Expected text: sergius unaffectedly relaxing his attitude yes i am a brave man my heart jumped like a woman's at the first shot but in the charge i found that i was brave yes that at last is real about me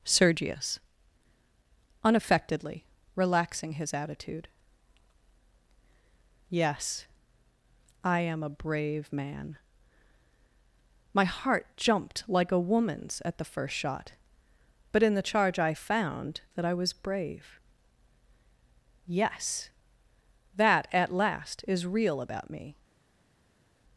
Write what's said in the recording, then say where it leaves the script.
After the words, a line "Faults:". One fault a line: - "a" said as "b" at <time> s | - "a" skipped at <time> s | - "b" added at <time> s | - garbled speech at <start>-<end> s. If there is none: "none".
sergius unaffectedly relaxing his attitude yes i am a brave man my heart jumped like a woman's at the first shot but in the charge i found that i was brave yes that at last is real about me
Faults:
none